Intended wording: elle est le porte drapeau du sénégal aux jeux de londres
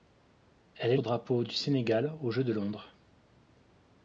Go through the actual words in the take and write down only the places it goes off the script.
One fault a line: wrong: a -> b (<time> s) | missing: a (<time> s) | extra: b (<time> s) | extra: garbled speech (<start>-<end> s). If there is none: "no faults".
missing: le porte (1.0 s)